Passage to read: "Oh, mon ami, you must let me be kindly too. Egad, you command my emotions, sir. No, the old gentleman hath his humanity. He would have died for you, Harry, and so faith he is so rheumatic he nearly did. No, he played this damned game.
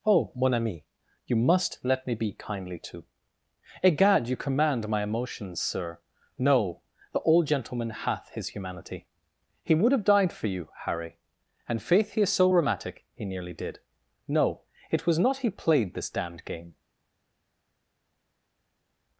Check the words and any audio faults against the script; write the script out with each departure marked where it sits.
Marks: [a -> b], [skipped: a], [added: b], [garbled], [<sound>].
"Oh, mon ami, you must let me be kindly too. Egad, you command my emotions, sir. No, the old gentleman hath his humanity. He would have died for you, Harry, and [skipped: so] faith he is so rheumatic he nearly did. No, [added: it was not] he played this damned game.